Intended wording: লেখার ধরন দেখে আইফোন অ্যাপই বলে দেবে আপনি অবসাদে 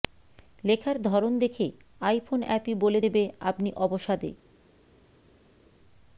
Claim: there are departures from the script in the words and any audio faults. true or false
false